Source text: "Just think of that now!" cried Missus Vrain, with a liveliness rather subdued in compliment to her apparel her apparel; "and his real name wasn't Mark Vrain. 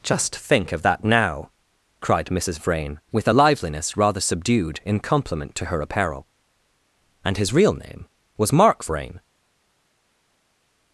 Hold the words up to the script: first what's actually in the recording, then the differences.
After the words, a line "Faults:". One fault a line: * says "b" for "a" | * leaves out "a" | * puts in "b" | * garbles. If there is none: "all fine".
"Just think of that now!" cried Missus Vrain, with a liveliness rather subdued in compliment to her apparel; "and his real name was Mark Vrain.
Faults:
* leaves out "her apparel"
* says "was" for "wasn't"